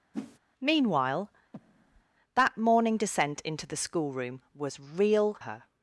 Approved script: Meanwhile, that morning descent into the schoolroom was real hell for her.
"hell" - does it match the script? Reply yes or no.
no